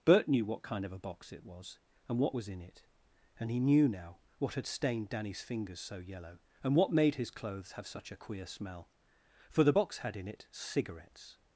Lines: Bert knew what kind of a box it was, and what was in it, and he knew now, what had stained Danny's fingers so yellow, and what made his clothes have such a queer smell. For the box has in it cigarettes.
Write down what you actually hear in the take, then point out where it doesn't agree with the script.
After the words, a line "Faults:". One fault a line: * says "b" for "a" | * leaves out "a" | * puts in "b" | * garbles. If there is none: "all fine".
Bert knew what kind of a box it was, and what was in it, and he knew now, what had stained Danny's fingers so yellow, and what made his clothes have such a queer smell. For the box had in it cigarettes.
Faults:
* says "had" for "has"